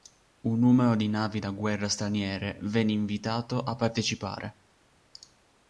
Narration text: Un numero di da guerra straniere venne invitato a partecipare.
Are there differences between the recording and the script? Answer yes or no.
yes